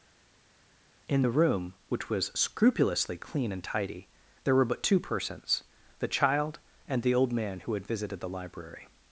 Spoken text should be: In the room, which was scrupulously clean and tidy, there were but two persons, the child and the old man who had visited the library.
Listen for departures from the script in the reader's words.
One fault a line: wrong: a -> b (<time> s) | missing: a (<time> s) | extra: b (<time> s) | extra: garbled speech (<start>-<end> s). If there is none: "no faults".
no faults